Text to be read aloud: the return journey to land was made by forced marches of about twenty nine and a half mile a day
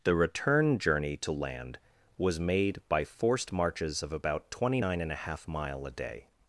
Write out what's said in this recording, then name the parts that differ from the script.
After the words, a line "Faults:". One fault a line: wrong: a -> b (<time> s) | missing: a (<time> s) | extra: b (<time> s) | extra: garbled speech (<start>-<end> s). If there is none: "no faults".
the return journey to land was made by forced marches of about twenty nine and a half mile a day
Faults:
no faults